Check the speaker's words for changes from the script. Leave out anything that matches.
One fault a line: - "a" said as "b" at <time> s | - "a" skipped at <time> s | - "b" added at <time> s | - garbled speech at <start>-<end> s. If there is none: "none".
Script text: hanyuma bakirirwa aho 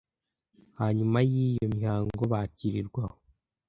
- "yiyo mihango" added at 1.3 s